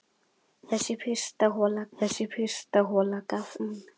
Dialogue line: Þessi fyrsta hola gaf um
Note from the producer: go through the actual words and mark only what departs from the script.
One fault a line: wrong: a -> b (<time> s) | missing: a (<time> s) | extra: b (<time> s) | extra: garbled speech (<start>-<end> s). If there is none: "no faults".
extra: þessi fyrsta hola (2.0 s)